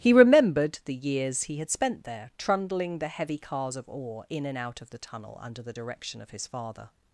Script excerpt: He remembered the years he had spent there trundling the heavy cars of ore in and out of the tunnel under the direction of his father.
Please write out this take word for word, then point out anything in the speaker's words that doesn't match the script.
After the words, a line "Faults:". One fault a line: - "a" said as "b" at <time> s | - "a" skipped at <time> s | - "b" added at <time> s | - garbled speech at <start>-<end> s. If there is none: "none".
He remembered the years he had spent there trundling the heavy cars of ore in and out of the tunnel under the direction of his father.
Faults:
none